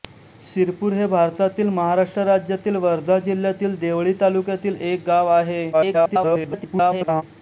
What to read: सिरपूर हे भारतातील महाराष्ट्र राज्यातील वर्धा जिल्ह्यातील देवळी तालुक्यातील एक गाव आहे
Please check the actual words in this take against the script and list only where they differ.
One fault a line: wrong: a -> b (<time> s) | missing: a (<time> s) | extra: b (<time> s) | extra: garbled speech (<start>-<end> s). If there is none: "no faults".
extra: garbled speech (5.7-7.2 s)